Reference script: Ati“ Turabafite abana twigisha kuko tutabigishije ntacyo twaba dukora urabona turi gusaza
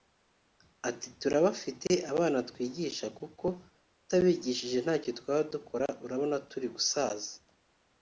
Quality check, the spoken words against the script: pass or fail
pass